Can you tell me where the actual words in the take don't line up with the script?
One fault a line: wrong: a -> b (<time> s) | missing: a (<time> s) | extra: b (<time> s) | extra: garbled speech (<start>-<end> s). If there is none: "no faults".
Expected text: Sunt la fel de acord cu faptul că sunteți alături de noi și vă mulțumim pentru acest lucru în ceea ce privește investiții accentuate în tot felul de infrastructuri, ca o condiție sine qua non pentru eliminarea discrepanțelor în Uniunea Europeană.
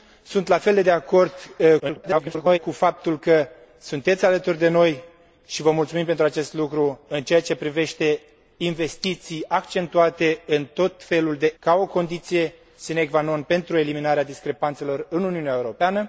extra: garbled speech (1.8-2.6 s)
missing: infrastructuri (11.5 s)